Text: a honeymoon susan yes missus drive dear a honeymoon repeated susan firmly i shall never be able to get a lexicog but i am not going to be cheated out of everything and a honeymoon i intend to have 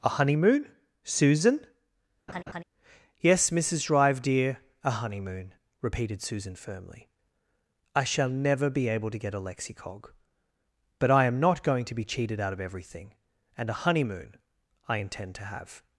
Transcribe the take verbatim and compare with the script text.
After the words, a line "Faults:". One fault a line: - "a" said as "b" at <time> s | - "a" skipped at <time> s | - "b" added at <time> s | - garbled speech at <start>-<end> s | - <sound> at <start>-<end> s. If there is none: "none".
a honeymoon susan yes missus drive dear a honeymoon repeated susan firmly i shall never be able to get a lexicog but i am not going to be cheated out of everything and a honeymoon i intend to have
Faults:
- laugh at 2.3-2.6 s